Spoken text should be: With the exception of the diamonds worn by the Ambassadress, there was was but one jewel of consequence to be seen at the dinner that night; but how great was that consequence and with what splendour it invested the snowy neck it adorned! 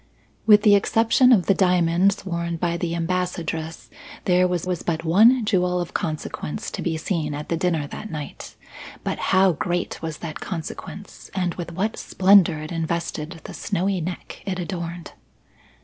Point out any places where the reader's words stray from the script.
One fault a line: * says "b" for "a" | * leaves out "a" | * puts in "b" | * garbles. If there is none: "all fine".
all fine